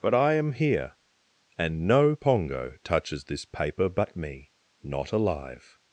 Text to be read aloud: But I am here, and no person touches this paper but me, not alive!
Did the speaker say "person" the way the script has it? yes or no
no